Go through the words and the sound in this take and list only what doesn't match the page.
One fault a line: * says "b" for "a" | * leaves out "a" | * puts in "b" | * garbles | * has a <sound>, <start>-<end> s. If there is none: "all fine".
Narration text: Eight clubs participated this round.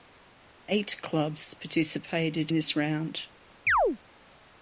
* has a chirp, 3.7-4.0 s